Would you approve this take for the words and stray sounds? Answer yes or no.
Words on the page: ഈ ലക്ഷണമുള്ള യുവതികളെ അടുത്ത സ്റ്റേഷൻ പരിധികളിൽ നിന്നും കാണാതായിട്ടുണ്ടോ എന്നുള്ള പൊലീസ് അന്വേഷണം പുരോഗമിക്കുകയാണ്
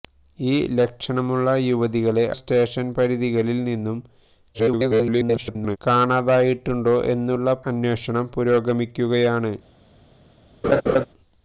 no